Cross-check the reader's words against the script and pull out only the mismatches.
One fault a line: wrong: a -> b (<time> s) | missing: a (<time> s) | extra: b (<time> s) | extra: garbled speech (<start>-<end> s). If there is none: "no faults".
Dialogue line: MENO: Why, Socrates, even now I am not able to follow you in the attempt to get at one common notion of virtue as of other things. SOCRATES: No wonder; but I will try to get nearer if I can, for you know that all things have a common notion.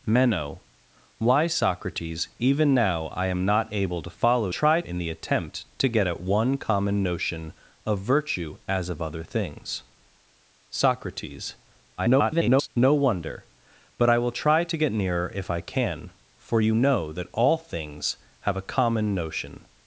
wrong: you -> try (4.5 s)
extra: garbled speech (12.0-12.7 s)